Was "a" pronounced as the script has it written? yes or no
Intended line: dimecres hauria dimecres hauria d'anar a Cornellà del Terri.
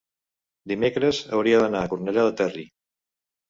yes